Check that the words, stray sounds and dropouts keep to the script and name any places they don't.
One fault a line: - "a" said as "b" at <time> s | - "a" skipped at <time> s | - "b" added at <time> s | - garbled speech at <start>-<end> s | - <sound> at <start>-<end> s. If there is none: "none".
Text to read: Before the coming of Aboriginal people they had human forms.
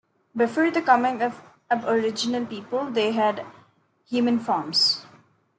none